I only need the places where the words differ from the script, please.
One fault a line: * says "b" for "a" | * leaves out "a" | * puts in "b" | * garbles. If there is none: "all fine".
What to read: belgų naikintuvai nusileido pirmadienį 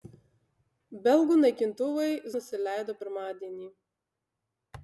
all fine